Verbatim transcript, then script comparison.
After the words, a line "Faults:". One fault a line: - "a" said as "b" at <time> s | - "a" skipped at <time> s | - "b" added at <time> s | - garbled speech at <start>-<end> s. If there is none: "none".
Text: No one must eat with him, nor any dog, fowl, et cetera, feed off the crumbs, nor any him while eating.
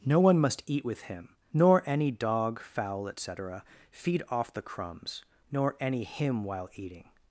No one must eat with him, nor any dog, fowl, et cetera, feed off the crumbs, nor any him while eating.
Faults:
none